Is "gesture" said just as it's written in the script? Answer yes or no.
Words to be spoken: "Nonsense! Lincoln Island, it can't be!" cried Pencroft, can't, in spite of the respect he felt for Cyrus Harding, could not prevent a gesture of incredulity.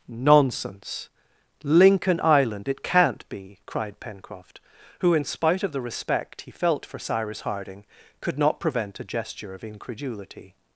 yes